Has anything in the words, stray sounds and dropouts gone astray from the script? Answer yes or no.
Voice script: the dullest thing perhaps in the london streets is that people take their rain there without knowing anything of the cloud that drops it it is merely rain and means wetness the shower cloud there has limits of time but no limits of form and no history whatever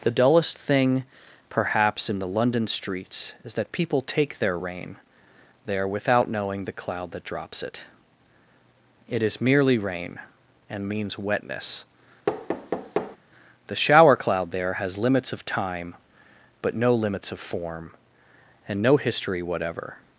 yes